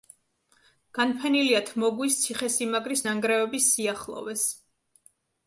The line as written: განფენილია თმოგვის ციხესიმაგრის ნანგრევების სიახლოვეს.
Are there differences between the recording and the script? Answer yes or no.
no